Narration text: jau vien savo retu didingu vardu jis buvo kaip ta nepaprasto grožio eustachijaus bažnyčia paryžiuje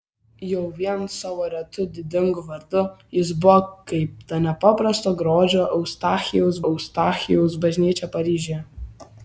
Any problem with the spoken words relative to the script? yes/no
yes